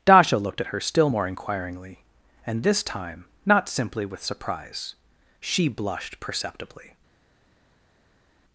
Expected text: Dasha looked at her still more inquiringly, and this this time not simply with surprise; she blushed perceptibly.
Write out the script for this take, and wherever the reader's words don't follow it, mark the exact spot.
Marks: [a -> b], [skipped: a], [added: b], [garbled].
Dasha looked at her still more inquiringly, and this [skipped: this] time not simply with surprise; she blushed perceptibly.